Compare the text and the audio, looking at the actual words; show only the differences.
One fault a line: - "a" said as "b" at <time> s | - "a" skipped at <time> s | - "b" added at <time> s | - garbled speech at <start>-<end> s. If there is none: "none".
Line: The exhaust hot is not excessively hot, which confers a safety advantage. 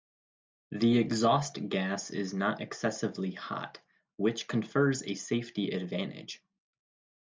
- "hot" said as "gas" at 1.7 s